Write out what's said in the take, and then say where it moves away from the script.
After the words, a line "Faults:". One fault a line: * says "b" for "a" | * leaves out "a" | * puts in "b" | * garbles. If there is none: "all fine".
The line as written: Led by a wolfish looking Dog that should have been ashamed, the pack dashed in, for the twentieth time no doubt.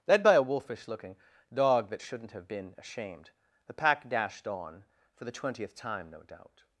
Led by a wolfish looking Dog that shouldn't have been ashamed, the pack dashed on, for the twentieth time no doubt.
Faults:
* says "shouldn't" for "should"
* says "on" for "in"